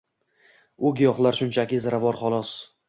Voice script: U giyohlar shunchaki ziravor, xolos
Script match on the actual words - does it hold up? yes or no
yes